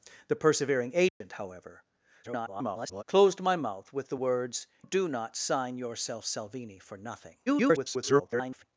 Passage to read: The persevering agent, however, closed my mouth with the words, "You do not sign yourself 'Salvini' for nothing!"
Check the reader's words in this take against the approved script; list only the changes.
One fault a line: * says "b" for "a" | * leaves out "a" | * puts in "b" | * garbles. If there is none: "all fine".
* garbles
* leaves out "You"
* garbles